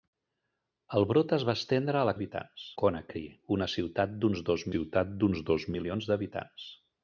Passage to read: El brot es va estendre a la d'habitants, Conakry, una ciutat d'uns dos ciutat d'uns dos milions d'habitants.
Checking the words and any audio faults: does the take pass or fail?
pass